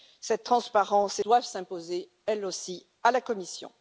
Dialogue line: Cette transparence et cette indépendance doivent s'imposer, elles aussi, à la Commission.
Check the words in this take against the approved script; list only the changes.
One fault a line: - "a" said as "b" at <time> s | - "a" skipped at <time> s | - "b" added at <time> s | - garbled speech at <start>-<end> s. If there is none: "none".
- "cette indépendance" skipped at 1.2 s